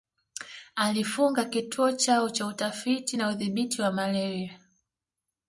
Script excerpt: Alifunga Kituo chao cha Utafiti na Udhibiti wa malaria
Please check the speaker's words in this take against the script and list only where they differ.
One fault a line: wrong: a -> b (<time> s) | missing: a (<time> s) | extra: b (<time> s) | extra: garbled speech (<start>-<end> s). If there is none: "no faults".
no faults